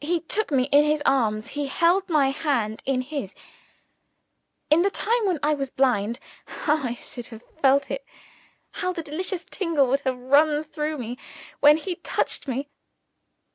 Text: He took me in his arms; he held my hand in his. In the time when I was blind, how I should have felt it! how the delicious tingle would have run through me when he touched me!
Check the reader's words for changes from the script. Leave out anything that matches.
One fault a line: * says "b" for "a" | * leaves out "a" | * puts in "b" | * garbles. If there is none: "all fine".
all fine